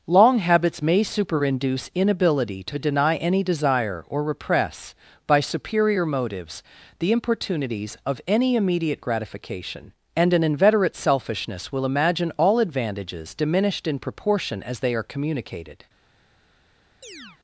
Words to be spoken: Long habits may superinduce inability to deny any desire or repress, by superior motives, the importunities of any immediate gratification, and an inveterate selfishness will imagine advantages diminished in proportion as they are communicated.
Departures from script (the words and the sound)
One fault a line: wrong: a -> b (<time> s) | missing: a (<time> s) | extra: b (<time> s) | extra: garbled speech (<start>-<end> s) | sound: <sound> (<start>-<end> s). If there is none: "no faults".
extra: all (12.4 s)
sound: chirp (17.0-17.4 s)